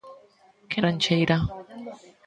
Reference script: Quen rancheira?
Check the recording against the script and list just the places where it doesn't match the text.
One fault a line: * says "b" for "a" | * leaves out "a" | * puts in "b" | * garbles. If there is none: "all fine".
all fine